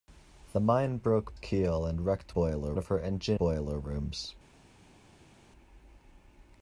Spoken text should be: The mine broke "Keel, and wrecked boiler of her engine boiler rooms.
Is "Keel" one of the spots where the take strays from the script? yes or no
no